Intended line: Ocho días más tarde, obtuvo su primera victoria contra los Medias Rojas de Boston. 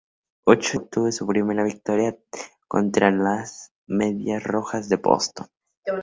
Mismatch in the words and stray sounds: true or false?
true